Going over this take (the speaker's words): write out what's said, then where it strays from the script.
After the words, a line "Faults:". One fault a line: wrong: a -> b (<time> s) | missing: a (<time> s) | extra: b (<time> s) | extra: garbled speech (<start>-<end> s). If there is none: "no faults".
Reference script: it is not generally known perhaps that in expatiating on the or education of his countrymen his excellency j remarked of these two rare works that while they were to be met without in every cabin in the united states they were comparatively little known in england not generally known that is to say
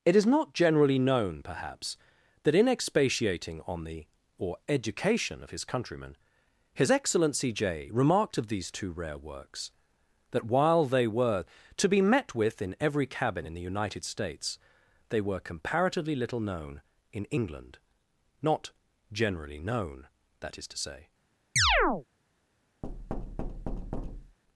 it is not generally known perhaps that in expatiating on the or education of his countrymen his excellency j remarked of these two rare works that while they were to be met with in every cabin in the united states they were comparatively little known in england not generally known that is to say
Faults:
wrong: without -> with (12.3 s)